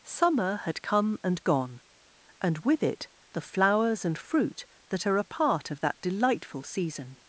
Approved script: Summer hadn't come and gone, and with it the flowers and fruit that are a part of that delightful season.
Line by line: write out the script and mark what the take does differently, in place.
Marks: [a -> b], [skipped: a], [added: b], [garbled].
Summer [hadn't -> had] come and gone, and with it the flowers and fruit that are a part of that delightful season.